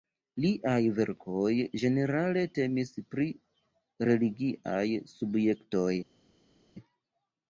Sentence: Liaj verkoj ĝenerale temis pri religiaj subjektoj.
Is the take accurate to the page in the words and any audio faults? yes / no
yes